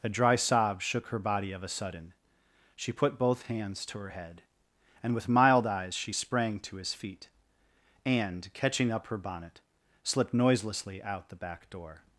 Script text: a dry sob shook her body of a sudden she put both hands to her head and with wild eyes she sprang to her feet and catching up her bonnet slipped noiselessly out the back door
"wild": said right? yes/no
no